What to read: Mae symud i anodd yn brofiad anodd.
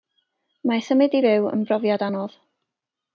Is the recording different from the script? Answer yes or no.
yes